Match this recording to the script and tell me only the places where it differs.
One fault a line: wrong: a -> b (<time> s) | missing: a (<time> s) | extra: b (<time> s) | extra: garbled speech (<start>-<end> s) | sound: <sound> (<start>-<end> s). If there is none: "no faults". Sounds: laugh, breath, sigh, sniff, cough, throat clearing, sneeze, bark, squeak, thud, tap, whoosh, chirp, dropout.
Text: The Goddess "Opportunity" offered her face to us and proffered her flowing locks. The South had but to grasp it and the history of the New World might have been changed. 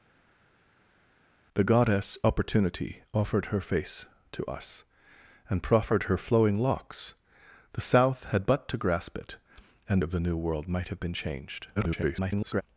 missing: the history (10.0 s)
extra: garbled speech (11.8-12.6 s)